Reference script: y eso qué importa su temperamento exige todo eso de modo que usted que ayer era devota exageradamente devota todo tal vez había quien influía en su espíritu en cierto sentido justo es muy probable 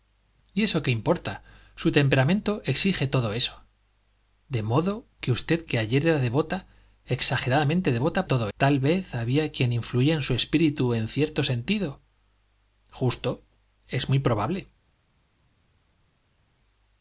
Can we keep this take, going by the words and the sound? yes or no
yes